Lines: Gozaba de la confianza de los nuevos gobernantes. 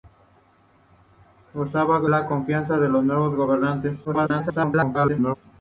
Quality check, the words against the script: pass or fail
fail